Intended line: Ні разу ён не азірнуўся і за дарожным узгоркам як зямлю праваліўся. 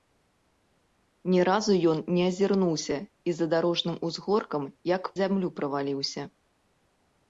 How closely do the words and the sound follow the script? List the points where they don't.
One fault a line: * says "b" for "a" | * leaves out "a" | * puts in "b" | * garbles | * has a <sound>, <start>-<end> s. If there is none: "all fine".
all fine